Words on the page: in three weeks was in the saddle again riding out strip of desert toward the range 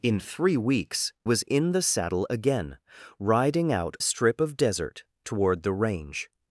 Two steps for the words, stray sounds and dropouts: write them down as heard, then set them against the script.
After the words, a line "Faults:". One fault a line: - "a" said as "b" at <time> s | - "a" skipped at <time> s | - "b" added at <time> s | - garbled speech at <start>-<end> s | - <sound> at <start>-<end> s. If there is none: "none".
in three weeks was in the saddle again riding out strip of desert toward the range
Faults:
none